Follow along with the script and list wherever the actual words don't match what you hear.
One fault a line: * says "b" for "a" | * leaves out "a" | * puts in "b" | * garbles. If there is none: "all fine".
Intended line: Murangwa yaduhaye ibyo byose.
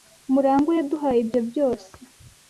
all fine